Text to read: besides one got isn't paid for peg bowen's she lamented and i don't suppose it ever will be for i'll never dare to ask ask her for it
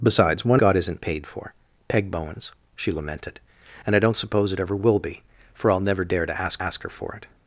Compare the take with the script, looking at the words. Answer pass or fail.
pass